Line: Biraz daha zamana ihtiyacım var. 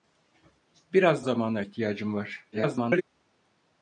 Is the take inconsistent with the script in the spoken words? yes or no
yes